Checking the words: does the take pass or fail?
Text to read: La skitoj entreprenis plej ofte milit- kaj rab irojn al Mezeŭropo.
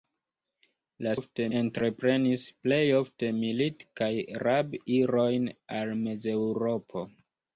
fail